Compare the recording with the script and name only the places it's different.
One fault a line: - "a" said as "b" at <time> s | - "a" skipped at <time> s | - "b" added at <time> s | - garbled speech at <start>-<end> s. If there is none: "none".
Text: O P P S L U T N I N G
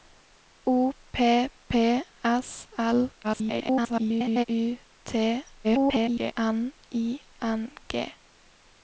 - garbled speech at 3.2-4.4 s
- garbled speech at 5.6-6.3 s